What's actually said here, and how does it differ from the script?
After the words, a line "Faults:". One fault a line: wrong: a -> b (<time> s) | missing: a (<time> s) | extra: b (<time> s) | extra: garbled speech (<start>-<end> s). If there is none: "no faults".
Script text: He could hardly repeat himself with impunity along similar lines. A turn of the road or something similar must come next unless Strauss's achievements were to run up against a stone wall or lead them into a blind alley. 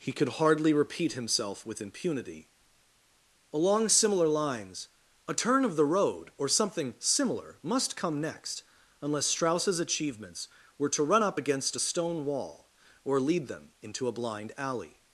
He could hardly repeat himself with impunity along similar lines. A turn of the road or something similar must come next unless Strauss's achievements were to run up against a stone wall or lead them into a blind alley.
Faults:
no faults